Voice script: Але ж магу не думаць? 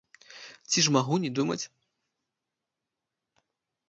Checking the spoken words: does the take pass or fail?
fail